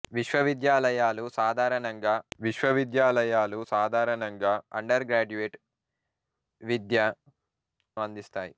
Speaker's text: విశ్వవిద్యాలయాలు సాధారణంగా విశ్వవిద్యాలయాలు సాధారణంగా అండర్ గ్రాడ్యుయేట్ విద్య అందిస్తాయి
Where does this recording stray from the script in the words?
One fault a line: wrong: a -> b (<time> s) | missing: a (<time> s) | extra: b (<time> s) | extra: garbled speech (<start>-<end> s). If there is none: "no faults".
no faults